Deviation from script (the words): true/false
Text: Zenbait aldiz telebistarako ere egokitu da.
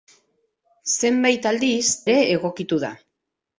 true